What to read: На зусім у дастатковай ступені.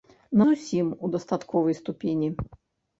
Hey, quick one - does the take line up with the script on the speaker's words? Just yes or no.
yes